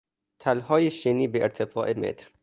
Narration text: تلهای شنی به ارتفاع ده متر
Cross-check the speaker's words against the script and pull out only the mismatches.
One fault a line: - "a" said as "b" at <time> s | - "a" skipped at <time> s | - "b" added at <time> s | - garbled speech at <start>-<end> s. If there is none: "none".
- "ده" skipped at 1.9 s